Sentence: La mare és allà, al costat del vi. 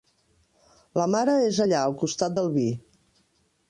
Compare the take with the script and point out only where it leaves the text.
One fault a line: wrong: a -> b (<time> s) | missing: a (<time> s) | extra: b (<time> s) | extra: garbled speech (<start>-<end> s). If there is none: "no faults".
no faults